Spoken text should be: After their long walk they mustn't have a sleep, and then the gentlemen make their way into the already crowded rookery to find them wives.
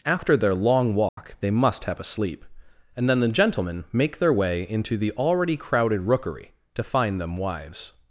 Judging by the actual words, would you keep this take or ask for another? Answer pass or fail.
fail